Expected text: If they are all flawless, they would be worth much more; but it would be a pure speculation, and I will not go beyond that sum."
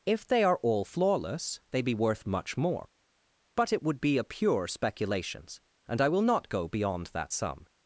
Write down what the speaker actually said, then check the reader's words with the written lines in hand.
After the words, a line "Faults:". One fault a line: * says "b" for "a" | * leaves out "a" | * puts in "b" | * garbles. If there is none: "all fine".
If they are all flawless, they be worth much more; but it would be a pure speculations, and I will not go beyond that sum."
Faults:
* leaves out "would"
* says "speculations" for "speculation"